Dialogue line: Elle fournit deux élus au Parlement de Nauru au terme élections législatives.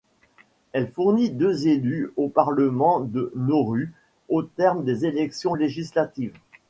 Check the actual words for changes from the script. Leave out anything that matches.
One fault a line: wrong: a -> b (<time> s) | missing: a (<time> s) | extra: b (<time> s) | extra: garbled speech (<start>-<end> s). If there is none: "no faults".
extra: des (4.8 s)